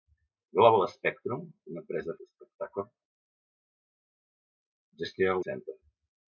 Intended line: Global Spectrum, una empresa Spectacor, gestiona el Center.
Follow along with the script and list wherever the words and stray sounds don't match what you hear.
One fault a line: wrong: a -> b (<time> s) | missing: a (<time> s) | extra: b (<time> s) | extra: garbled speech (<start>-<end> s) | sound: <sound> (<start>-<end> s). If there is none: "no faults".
no faults